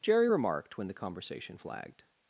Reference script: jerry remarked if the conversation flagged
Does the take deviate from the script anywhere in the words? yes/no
yes